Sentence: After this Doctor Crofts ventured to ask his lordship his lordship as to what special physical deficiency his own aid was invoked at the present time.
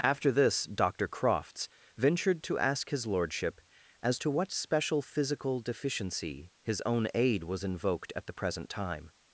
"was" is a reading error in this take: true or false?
false